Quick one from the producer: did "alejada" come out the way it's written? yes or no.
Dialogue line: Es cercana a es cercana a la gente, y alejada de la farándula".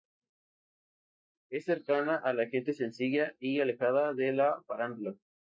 yes